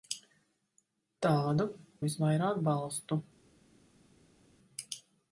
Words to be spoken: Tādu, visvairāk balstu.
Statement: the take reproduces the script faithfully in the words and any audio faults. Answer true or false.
true